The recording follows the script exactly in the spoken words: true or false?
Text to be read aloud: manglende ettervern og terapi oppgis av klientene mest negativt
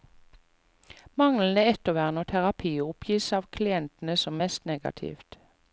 false